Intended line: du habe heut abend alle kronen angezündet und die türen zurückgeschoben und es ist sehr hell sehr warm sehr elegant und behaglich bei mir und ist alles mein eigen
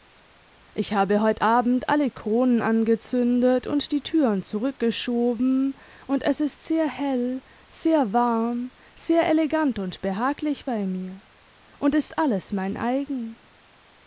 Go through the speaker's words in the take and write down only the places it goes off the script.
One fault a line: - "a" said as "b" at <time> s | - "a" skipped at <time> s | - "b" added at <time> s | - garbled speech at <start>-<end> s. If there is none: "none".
- "du" said as "ich" at 0.7 s